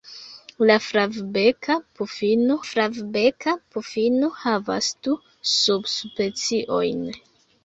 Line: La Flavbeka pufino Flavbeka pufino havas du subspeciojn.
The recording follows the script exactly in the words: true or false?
true